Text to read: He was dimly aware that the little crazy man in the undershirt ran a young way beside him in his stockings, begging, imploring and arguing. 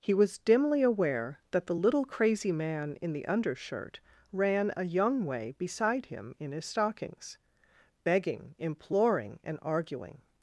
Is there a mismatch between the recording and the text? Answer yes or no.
no